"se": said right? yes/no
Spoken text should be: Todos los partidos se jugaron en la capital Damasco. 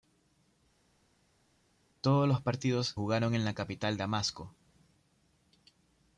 no